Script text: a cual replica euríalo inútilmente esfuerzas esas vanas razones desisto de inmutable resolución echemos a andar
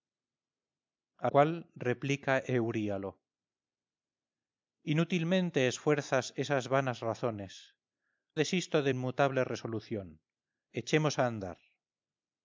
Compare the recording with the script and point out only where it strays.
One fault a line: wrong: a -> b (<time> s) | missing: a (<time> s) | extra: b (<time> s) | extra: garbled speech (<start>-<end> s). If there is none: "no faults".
no faults